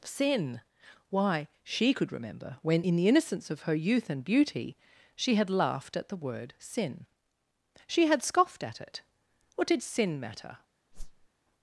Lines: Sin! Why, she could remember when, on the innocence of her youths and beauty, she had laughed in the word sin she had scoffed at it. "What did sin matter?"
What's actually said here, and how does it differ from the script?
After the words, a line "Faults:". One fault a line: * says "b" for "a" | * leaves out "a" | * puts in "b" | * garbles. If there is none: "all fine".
Sin! Why, she could remember when, in the innocence of her youth and beauty, she had laughed at the word sin she had scoffed at it. "What did sin matter?"
Faults:
* says "in" for "on"
* says "youth" for "youths"
* says "at" for "in"